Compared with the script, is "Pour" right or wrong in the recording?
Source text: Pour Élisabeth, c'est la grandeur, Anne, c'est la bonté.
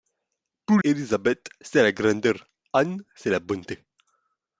right